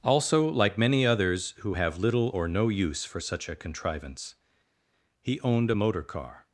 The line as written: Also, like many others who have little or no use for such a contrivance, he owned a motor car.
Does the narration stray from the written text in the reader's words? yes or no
no